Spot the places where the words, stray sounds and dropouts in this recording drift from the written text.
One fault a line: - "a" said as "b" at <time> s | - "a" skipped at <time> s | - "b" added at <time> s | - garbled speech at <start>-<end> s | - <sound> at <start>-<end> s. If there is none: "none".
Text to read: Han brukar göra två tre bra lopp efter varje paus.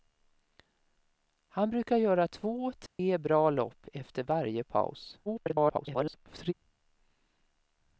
- dropout at 2.9-3.0 s
- garbled speech at 5.3-6.5 s